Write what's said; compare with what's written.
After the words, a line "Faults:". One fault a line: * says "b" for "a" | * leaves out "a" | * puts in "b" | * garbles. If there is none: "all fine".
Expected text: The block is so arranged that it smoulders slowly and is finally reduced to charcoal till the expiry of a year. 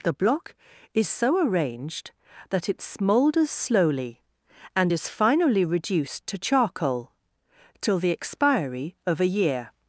The block is so arranged that it smoulders slowly and is finally reduced to charcoal till the expiry of a year.
Faults:
all fine